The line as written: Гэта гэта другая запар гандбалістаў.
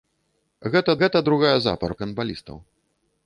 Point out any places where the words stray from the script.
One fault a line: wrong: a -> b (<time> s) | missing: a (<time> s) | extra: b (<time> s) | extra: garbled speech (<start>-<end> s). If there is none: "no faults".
no faults